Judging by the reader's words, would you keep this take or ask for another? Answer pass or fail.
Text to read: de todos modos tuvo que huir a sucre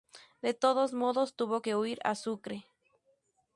pass